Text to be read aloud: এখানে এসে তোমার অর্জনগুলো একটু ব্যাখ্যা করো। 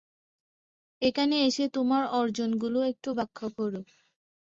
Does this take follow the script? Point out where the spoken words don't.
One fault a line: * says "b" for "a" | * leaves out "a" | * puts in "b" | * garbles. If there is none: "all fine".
all fine